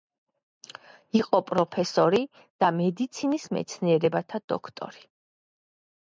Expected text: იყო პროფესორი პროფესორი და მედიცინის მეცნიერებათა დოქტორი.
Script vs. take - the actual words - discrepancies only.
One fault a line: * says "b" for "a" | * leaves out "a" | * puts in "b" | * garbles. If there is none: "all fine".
* leaves out "პროფესორი"